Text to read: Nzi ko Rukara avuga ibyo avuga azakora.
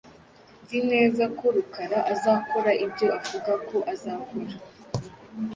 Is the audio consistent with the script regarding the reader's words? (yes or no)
no